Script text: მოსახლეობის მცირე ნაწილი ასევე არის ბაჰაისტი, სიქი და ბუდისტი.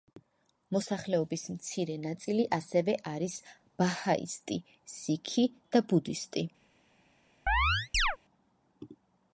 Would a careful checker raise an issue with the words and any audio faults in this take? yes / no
yes